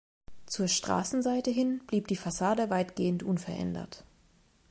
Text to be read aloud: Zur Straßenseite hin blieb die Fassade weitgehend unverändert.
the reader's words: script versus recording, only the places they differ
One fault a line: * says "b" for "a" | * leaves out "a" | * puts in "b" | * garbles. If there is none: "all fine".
all fine